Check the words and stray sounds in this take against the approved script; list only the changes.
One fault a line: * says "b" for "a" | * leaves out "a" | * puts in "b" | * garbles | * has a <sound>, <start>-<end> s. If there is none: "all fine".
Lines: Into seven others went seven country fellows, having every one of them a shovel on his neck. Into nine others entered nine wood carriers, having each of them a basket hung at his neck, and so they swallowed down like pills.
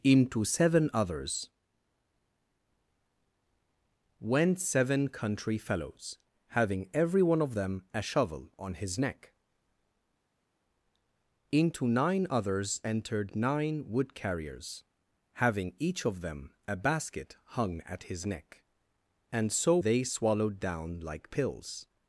all fine